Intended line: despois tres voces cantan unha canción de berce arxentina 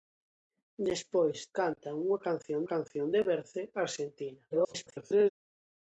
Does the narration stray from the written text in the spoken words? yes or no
yes